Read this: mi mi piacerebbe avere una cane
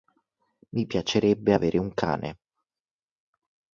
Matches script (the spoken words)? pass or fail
fail